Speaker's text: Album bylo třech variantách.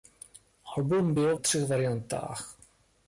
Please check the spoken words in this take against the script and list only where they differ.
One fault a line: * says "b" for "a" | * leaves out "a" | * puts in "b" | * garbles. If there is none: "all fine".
all fine